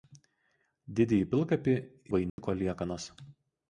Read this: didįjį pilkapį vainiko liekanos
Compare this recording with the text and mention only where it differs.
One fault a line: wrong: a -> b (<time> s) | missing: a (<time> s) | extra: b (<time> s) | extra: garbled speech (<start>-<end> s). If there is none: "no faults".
no faults